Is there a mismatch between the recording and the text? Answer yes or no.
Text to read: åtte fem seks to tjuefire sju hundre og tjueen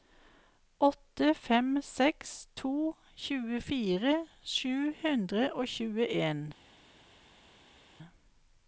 no